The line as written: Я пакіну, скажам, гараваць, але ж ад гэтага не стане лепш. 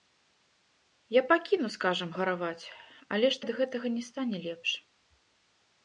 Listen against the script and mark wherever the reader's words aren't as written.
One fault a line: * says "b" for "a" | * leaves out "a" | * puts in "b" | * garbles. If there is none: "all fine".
all fine